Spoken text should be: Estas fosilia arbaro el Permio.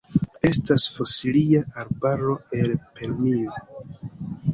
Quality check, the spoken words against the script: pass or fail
pass